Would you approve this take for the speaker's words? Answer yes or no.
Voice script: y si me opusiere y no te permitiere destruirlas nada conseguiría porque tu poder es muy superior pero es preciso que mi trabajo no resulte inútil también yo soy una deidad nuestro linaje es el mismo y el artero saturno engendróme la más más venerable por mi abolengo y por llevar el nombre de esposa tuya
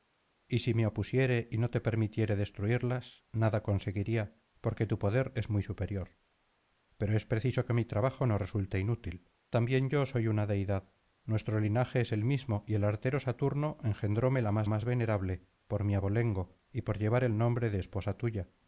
yes